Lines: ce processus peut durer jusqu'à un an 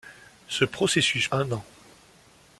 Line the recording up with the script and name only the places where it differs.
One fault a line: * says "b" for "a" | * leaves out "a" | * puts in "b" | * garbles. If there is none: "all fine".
* leaves out "peut durer jusqu'à"